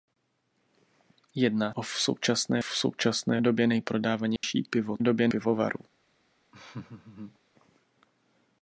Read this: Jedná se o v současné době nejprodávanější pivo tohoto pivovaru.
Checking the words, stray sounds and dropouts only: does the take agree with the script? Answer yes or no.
no